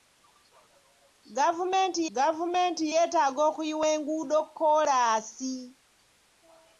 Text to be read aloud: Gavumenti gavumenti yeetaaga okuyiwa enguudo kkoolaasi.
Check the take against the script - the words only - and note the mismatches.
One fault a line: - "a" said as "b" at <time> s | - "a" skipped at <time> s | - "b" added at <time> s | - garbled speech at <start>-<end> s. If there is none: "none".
none